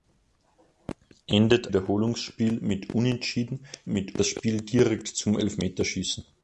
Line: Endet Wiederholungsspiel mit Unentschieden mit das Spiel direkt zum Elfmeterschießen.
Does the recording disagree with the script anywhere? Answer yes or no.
no